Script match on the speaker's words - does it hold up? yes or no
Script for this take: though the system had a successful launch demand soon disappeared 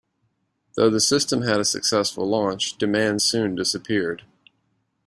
yes